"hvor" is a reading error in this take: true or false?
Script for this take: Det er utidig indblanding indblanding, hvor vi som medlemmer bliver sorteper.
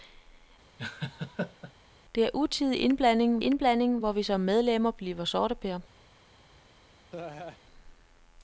false